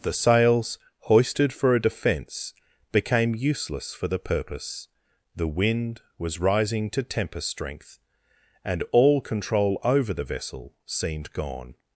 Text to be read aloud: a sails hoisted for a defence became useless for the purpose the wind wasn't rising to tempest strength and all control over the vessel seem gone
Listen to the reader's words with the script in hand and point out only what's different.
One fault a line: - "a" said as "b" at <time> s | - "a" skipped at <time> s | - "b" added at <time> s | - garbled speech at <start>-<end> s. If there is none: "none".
- "a" said as "the" at 0.0 s
- "wasn't" said as "was" at 6.2 s
- "seem" said as "seemed" at 10.9 s